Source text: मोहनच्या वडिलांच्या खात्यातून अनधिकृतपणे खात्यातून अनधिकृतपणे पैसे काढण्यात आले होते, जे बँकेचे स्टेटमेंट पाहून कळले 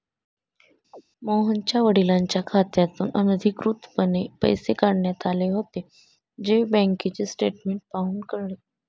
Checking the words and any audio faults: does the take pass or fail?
fail